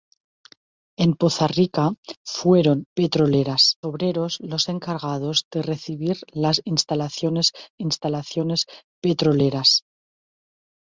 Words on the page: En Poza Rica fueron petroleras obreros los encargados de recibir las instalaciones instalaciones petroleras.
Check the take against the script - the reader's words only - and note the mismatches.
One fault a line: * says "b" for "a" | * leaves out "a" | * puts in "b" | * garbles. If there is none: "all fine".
all fine